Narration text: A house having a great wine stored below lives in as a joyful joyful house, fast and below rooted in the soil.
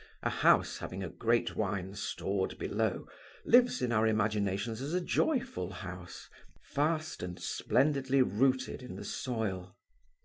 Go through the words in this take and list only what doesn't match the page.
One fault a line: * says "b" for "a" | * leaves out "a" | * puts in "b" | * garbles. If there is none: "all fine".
* puts in "our imaginations"
* leaves out "joyful"
* says "splendidly" for "below"